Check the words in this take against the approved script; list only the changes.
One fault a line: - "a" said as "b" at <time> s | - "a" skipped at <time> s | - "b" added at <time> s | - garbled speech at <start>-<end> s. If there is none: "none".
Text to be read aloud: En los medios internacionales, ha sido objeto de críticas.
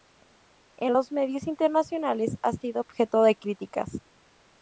none